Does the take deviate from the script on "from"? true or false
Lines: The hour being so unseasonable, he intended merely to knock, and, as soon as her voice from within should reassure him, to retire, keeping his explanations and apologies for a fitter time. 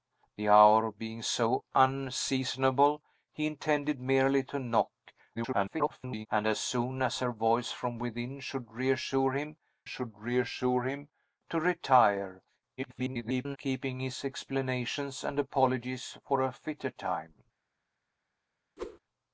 false